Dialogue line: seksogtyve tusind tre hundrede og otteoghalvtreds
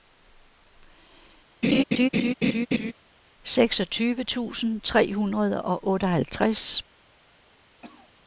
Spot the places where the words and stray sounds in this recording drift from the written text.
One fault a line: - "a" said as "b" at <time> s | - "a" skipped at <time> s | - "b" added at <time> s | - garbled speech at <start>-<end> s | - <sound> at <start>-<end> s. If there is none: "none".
- laugh at 1.6-2.9 s
- cough at 7.8-8.1 s